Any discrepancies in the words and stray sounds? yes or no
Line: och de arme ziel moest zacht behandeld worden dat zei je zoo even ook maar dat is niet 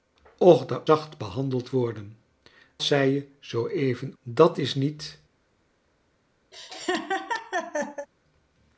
yes